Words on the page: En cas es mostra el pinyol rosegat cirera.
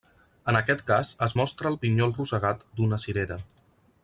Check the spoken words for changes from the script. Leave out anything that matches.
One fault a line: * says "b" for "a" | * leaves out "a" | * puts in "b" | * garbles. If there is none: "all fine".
* puts in "aquest"
* puts in "d'una"